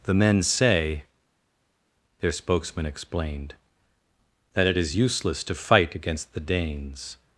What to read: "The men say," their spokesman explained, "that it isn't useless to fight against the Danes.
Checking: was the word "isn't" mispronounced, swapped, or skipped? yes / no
yes